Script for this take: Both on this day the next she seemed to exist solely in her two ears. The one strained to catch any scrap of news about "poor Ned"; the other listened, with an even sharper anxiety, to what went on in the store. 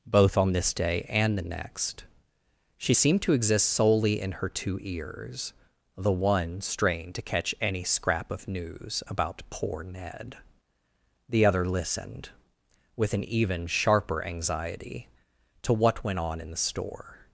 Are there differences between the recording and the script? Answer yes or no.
yes